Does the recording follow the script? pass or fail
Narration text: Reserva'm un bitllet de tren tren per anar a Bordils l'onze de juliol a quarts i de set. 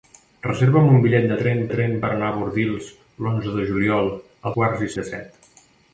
pass